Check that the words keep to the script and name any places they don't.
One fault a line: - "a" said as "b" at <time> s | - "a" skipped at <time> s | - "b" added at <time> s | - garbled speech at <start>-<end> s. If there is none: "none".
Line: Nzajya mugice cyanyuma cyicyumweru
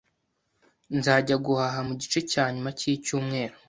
- "guhaha" added at 1.4 s